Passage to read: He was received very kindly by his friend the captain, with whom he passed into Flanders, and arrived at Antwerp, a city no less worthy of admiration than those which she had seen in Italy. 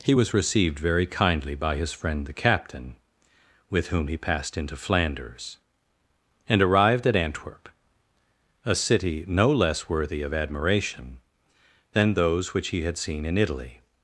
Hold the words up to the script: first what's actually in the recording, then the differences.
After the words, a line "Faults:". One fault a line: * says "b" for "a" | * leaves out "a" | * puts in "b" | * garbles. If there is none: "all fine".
He was received very kindly by his friend the captain, with whom he passed into Flanders, and arrived at Antwerp, a city no less worthy of admiration than those which he had seen in Italy.
Faults:
* says "he" for "she"